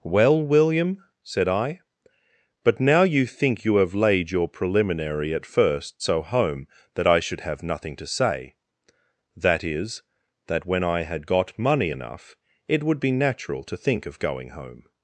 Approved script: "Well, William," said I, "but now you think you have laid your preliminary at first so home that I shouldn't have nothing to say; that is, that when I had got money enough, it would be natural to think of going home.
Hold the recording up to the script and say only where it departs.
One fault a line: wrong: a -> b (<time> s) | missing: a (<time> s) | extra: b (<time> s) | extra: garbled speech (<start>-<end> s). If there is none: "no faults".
wrong: shouldn't -> should (7.2 s)